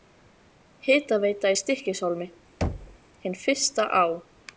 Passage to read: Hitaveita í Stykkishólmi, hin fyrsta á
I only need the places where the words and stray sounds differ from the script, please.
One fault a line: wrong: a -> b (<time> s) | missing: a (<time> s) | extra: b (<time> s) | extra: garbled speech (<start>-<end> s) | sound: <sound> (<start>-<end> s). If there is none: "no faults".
sound: thud (2.6-3.0 s)